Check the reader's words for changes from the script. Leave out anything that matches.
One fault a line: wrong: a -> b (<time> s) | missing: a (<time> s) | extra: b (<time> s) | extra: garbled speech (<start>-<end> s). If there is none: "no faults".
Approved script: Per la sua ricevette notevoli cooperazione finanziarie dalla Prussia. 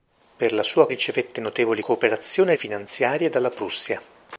no faults